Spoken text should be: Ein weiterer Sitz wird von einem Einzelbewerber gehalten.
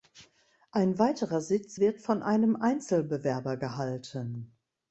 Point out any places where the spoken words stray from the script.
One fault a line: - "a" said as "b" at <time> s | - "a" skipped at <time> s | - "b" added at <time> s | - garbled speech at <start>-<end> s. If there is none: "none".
none